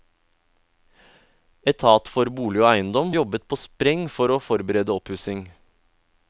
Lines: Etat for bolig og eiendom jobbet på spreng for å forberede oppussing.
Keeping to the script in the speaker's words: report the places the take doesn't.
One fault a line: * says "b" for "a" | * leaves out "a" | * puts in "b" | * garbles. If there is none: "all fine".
all fine